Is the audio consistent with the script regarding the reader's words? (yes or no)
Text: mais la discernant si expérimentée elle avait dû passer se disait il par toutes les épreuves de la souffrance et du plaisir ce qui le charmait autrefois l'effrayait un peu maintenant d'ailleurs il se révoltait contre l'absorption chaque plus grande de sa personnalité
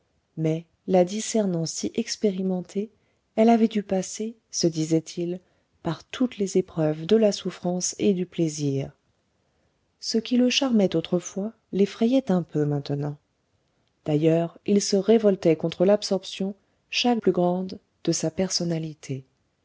yes